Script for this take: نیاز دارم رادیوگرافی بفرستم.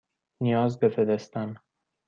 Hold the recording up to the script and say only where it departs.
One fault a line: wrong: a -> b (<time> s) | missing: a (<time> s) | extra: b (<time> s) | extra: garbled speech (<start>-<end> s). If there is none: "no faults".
missing: دارم رادیوگرافی (0.8 s)